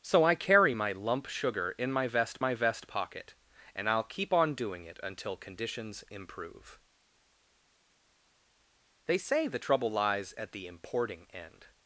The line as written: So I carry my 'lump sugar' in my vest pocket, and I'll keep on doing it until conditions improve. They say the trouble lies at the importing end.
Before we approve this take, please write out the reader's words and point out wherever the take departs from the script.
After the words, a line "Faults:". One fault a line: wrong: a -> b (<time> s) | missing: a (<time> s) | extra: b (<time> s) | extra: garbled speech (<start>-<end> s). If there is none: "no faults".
So I carry my 'lump sugar' in my vest my vest pocket, and I'll keep on doing it until conditions improve. They say the trouble lies at the importing end.
Faults:
extra: my vest (2.4 s)